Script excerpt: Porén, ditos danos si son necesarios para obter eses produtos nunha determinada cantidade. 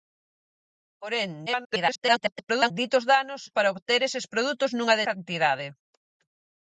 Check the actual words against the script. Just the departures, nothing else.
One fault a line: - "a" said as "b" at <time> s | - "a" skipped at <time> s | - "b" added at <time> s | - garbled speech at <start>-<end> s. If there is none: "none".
- garbled speech at 1.5-2.7 s
- "si son necesarios" skipped at 3.4 s
- "determinada" skipped at 5.0 s